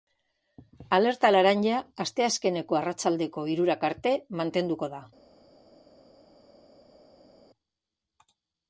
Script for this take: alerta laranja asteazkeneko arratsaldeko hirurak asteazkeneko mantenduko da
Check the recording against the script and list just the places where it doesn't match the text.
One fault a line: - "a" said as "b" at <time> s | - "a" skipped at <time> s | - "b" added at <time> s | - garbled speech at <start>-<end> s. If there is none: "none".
- "asteazkeneko" said as "arte" at 3.9 s